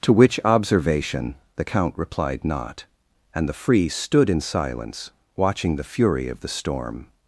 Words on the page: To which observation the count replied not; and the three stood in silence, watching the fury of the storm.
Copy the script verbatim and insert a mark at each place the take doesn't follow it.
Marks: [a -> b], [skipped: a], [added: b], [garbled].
To which observation the count replied not; and the [three -> free] stood in silence, watching the fury of the storm.